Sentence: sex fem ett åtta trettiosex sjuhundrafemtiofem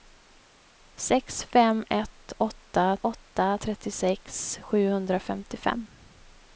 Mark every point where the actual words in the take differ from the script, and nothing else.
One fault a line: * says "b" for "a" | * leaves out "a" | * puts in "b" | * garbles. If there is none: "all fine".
* puts in "åtta"